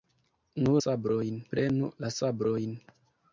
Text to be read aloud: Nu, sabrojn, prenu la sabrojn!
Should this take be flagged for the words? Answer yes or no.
no